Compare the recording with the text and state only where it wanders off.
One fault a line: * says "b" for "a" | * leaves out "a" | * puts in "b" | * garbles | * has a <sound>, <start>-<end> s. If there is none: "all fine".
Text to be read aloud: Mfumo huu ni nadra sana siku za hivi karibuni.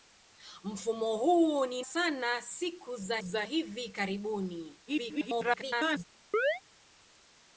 * leaves out "nadra"
* puts in "za"
* garbles
* has a chirp, 6.3-6.6 s